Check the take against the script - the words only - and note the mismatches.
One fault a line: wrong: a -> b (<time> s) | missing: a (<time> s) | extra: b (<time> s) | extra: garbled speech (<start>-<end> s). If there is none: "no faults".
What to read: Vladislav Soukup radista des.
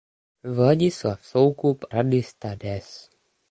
no faults